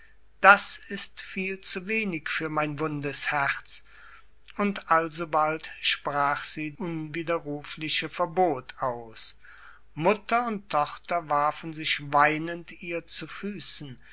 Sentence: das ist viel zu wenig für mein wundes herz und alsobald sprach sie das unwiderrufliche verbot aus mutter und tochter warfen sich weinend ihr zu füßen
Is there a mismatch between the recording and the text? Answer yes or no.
yes